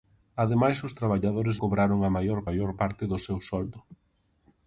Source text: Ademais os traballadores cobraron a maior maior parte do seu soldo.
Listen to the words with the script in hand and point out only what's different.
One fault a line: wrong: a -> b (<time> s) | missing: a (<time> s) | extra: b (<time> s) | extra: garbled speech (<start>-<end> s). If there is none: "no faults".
no faults